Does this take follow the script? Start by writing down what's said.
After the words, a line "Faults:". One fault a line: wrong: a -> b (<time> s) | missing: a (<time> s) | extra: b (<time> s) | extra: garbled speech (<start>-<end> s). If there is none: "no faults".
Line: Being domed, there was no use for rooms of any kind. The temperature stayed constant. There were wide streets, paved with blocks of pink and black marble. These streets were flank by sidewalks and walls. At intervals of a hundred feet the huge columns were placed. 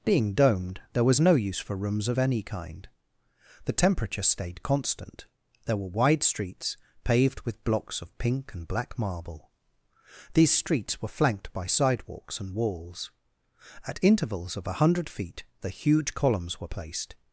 Being domed, there was no use for rooms of any kind. The temperature stayed constant. There were wide streets, paved with blocks of pink and black marble. These streets were flanked by sidewalks and walls. At intervals of a hundred feet the huge columns were placed.
Faults:
wrong: flank -> flanked (11.2 s)